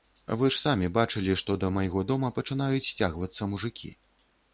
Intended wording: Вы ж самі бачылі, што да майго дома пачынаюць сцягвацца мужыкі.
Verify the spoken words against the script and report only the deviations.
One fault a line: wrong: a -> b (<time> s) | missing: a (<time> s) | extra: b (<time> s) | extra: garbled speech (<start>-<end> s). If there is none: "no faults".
no faults